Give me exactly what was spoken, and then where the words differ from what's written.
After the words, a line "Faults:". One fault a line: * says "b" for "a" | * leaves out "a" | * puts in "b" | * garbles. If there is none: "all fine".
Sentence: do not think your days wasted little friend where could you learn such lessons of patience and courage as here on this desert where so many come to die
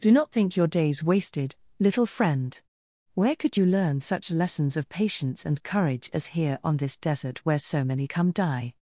do not think your days wasted little friend where could you learn such lessons of patience and courage as here on this desert where so many come die
Faults:
* leaves out "to"